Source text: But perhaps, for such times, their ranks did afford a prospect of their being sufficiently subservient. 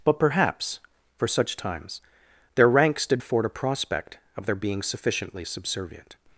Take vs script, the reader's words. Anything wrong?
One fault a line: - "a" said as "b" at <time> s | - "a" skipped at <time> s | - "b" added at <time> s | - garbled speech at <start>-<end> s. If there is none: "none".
none